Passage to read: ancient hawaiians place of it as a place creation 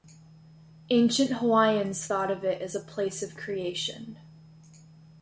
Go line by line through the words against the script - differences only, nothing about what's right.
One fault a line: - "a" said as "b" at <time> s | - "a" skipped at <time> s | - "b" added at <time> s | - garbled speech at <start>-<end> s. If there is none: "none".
- "place" said as "thought" at 2.0 s
- "of" added at 3.2 s